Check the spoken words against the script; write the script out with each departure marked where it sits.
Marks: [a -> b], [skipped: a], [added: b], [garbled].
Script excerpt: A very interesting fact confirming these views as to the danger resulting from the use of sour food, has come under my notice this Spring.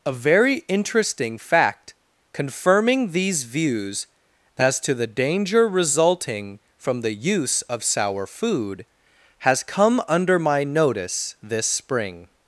A very interesting fact confirming these views as to the danger resulting from the use of sour food, has come under my notice this Spring.